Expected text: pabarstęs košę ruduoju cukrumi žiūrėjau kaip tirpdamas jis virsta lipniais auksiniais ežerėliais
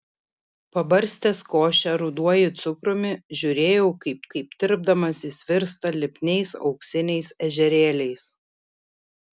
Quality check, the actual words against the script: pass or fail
fail